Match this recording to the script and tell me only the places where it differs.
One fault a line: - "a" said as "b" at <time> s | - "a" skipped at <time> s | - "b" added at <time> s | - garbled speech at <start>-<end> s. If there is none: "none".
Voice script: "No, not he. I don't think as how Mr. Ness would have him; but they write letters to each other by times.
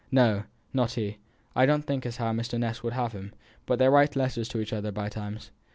none